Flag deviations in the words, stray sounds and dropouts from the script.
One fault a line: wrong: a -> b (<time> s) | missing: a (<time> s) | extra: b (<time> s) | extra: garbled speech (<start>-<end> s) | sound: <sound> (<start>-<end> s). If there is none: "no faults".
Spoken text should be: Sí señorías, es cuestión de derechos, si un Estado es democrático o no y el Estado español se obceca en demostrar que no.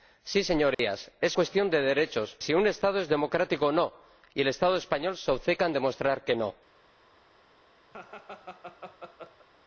sound: dropout (0.7-0.8 s)
sound: laugh (7.9-9.5 s)